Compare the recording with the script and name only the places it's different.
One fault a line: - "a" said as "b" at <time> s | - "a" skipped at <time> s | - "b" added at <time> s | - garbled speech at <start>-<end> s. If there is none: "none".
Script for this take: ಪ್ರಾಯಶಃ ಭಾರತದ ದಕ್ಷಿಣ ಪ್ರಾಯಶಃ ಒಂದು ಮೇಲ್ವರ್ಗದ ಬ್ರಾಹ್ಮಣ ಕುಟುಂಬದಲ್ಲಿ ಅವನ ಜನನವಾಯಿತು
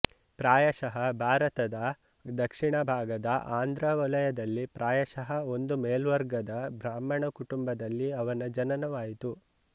- "ಭಾಗದ ಆಂಧ್ರ ವಲಯದಲ್ಲಿ" added at 2.8 s